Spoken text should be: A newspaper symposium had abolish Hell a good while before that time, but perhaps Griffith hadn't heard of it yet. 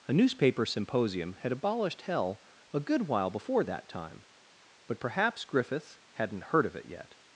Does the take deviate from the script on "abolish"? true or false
true